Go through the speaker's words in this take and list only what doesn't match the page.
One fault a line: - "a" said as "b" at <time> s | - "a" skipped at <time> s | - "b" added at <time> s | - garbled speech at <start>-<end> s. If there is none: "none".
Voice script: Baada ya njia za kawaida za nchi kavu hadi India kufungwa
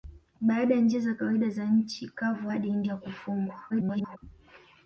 - garbled speech at 3.7-4.2 s